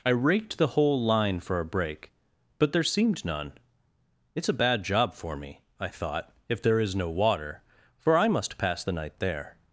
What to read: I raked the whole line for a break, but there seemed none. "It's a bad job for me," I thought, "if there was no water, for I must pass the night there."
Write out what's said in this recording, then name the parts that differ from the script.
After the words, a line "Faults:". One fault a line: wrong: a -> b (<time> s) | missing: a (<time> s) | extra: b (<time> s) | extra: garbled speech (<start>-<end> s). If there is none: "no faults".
I raked the whole line for a break, but there seemed none. "It's a bad job for me," I thought, "if there is no water, for I must pass the night there."
Faults:
wrong: was -> is (6.8 s)